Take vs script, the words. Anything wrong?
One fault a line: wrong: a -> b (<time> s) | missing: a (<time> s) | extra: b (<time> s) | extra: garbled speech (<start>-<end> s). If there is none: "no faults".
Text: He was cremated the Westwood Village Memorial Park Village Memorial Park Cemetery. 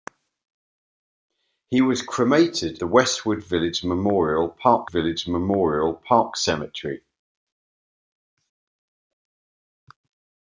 no faults